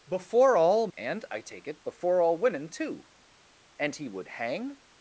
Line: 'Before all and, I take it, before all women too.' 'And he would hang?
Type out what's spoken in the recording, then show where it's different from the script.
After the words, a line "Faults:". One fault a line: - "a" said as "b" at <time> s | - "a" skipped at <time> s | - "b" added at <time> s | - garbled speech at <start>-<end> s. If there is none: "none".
'Before all and, I take it, before all women too.' 'And he would hang?
Faults:
none